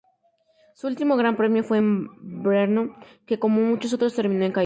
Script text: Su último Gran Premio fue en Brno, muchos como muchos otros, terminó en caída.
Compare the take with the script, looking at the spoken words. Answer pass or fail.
fail